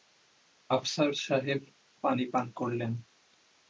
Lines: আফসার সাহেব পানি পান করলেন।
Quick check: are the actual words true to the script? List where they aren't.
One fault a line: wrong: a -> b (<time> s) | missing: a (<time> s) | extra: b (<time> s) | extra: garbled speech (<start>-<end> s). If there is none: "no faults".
no faults